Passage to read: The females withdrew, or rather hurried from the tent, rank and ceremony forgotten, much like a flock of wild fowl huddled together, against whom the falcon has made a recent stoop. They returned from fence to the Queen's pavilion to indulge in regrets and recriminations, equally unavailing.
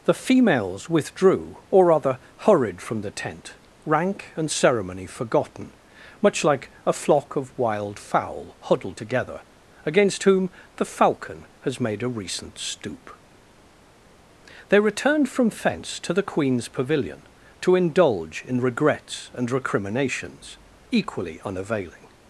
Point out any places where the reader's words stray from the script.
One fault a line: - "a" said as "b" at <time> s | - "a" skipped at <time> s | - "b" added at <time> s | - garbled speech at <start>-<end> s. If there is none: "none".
none